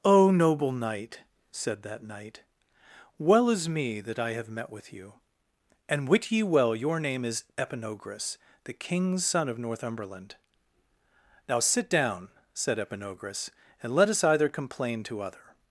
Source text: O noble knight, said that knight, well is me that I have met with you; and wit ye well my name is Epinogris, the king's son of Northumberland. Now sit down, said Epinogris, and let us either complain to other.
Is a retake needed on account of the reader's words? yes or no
yes